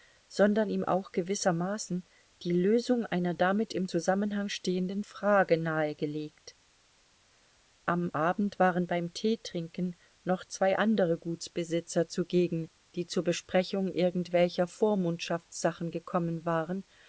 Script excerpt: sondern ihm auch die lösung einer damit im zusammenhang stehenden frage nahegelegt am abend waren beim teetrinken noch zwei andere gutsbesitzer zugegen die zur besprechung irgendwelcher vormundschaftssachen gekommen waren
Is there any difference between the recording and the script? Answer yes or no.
yes